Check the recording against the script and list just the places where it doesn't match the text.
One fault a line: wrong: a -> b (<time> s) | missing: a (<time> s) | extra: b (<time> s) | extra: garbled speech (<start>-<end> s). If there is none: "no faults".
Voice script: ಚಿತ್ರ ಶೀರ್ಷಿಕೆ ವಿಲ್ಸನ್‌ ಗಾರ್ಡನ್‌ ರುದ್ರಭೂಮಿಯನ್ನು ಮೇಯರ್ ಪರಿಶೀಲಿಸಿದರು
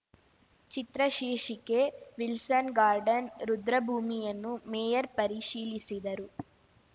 no faults